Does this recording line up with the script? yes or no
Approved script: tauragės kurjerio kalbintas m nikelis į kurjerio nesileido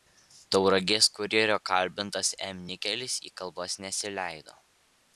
no